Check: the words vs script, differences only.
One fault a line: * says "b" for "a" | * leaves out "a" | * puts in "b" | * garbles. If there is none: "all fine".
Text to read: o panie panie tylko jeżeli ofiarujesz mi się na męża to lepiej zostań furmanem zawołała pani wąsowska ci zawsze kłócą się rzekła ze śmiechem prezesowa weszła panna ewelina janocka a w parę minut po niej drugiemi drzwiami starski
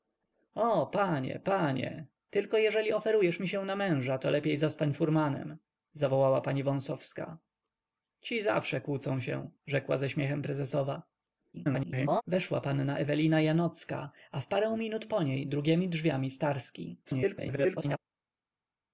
* garbles
* garbles